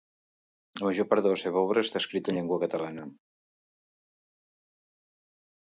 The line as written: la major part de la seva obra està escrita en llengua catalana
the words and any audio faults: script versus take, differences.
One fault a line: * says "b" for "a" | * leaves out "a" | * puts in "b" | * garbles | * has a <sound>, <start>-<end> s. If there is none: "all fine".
all fine